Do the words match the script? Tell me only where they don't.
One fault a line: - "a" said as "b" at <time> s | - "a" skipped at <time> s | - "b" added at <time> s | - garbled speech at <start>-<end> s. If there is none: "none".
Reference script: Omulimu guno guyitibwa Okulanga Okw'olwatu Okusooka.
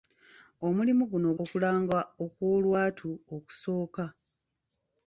- "guyitibwa" skipped at 1.3 s